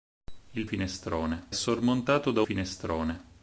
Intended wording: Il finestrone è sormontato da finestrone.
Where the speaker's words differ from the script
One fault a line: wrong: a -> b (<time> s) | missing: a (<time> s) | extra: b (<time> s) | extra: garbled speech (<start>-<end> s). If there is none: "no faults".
no faults